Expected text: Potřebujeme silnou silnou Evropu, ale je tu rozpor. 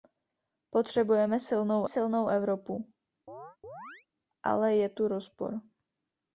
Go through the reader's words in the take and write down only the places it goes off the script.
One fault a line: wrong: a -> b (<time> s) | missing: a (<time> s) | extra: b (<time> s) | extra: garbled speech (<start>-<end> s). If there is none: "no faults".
no faults